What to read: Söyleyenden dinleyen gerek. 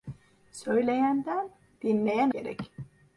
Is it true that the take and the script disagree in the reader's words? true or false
false